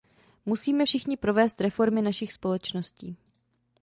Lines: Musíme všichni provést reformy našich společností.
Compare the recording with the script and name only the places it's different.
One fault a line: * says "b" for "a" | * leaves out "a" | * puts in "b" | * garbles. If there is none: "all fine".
all fine